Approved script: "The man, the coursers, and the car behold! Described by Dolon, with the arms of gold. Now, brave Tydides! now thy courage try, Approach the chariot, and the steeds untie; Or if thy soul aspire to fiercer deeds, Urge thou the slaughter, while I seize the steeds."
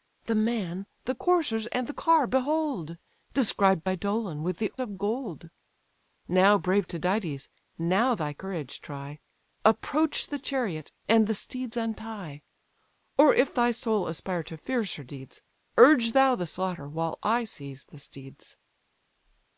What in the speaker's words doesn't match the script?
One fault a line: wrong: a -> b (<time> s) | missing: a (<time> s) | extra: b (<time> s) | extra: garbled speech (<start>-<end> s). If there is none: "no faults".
missing: arms (4.7 s)